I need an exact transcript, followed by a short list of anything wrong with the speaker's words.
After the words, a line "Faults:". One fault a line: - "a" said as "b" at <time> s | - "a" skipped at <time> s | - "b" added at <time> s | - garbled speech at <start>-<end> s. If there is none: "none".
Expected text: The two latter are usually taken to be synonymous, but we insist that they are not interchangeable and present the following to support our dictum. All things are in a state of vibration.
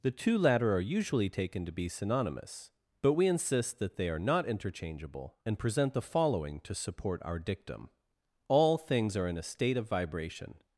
The two latter are usually taken to be synonymous, but we insist that they are not interchangeable and present the following to support our dictum. All things are in a state of vibration.
Faults:
none